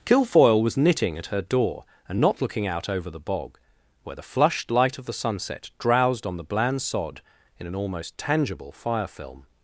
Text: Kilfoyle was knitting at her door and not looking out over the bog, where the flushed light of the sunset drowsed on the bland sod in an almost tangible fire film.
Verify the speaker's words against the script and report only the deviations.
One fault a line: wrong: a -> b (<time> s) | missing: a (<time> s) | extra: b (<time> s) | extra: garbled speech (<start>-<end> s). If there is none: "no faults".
no faults